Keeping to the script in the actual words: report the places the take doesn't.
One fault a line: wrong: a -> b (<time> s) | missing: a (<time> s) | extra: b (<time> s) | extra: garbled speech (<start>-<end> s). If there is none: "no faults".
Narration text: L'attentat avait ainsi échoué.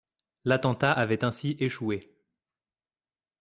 no faults